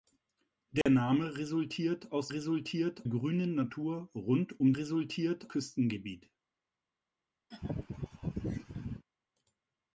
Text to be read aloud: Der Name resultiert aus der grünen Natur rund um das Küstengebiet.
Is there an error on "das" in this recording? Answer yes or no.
yes